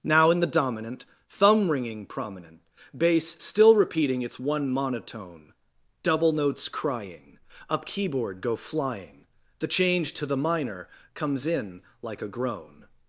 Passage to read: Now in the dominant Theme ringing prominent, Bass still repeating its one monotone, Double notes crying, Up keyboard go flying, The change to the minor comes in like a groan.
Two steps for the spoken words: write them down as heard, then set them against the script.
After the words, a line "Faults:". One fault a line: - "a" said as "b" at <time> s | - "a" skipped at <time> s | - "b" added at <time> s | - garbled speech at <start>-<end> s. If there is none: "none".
Now in the dominant Thumb ringing prominent, Bass still repeating its one monotone, Double notes crying, Up keyboard go flying, The change to the minor comes in like a groan.
Faults:
- "Theme" said as "Thumb" at 1.3 s